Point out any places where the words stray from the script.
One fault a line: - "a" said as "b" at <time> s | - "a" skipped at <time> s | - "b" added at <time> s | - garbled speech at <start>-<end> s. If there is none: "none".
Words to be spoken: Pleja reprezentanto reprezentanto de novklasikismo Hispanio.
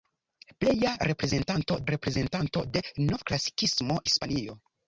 none